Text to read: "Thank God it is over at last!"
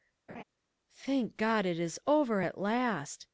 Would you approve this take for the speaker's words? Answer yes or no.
yes